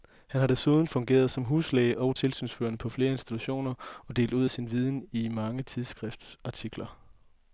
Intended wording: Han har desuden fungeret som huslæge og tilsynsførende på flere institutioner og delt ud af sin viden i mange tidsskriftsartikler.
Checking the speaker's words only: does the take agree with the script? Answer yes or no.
yes